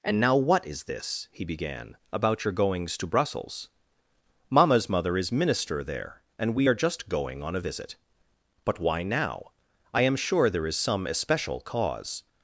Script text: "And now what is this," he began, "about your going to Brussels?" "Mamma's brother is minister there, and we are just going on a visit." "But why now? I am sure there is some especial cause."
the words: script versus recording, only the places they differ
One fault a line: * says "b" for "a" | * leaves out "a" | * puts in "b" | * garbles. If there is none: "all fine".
* says "goings" for "going"
* says "mother" for "brother"